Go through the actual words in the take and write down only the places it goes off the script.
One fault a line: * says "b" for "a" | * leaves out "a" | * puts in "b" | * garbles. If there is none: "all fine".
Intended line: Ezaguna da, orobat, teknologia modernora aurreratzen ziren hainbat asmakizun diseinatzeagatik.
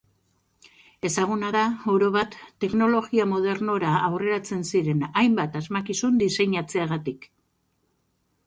all fine